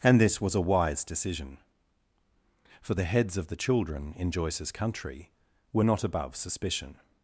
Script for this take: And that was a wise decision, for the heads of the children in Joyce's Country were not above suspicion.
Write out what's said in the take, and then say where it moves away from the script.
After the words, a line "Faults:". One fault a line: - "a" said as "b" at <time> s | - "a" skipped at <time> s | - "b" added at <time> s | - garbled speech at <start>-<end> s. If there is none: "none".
And this was a wise decision, for the heads of the children in Joyce's Country were not above suspicion.
Faults:
- "that" said as "this" at 0.2 s